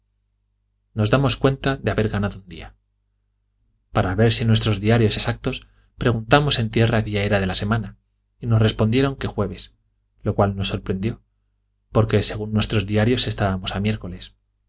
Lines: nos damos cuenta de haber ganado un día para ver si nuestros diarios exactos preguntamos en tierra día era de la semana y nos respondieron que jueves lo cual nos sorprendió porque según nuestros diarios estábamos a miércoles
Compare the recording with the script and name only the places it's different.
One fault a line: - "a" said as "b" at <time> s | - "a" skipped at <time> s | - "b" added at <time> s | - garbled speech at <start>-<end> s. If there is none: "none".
none